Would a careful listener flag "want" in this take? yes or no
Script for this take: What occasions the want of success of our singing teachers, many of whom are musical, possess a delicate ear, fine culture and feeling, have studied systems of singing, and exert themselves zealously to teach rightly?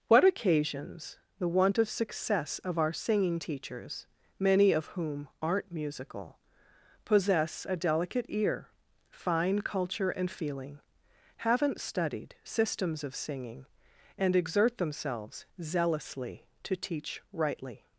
no